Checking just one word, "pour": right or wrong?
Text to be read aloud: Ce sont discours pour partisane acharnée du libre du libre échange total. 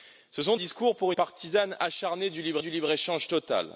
right